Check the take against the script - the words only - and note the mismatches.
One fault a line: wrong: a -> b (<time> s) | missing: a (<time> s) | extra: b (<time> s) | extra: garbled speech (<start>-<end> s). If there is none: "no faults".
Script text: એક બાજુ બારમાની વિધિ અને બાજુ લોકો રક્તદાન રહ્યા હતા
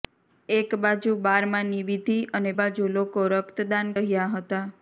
no faults